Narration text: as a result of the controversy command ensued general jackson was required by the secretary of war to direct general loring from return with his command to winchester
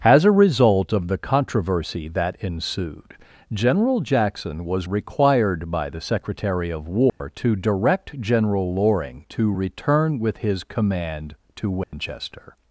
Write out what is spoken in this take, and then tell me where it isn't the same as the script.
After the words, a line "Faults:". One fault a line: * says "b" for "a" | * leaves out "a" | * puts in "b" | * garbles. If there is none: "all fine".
as a result of the controversy that ensued general jackson was required by the secretary of war to direct general loring to return with his command to winchester
Faults:
* says "that" for "command"
* says "to" for "from"